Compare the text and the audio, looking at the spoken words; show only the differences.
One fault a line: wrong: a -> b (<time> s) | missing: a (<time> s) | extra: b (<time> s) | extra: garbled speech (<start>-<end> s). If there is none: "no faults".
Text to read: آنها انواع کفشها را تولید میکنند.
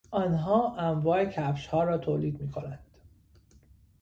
no faults